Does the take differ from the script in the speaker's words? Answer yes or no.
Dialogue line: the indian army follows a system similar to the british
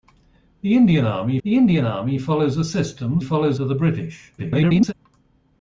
yes